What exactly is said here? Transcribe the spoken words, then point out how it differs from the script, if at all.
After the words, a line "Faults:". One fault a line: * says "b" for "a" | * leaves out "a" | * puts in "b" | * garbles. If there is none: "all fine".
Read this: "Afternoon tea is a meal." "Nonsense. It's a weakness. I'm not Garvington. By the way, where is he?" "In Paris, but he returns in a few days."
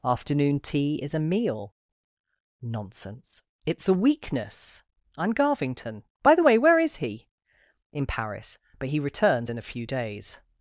"Afternoon tea is a meal." "Nonsense. It's a weakness. I'm Garvington. By the way, where is he?" "In Paris, but he returns in a few days."
Faults:
* leaves out "not"